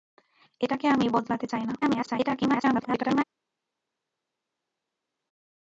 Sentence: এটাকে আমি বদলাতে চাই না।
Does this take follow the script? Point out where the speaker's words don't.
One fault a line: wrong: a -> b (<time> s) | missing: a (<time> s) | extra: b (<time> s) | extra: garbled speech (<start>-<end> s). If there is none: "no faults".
extra: garbled speech (1.8-3.2 s)